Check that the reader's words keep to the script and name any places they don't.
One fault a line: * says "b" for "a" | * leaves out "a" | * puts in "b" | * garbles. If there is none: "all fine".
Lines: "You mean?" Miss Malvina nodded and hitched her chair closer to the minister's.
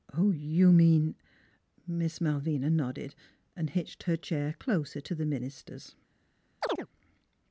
all fine